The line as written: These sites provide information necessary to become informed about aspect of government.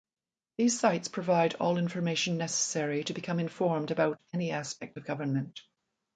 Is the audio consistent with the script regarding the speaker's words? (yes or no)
no